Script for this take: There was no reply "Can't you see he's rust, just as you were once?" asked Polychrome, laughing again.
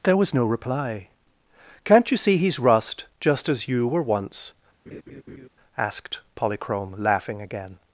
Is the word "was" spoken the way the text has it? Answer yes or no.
yes